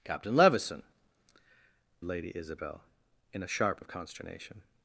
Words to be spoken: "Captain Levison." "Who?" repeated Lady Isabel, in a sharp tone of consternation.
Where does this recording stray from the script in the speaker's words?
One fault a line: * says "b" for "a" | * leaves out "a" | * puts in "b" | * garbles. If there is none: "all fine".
* leaves out "Who repeated"
* leaves out "tone"